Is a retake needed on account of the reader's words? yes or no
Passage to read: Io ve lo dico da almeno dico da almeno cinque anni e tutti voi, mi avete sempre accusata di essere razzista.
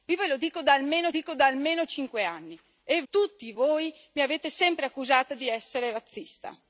no